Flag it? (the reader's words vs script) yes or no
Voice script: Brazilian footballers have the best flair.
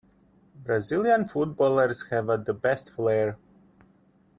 no